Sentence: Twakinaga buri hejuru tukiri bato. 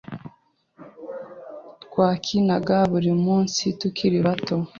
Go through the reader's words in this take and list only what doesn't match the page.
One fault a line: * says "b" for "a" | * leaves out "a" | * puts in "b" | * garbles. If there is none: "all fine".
* says "munsi" for "hejuru"